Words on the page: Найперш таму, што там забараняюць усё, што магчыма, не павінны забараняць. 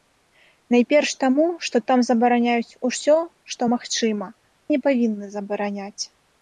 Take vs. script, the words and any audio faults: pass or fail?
pass